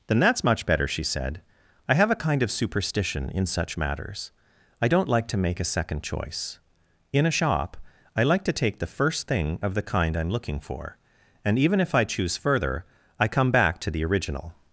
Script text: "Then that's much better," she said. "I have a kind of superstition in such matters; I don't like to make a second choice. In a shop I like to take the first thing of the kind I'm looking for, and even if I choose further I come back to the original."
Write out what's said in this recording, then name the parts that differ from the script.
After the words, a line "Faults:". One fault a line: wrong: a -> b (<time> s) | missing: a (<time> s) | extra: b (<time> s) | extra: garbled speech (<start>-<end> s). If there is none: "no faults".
"Then that's much better," she said. "I have a kind of superstition in such matters; I don't like to make a second choice. In a shop I like to take the first thing of the kind I'm looking for, and even if I choose further I come back to the original."
Faults:
no faults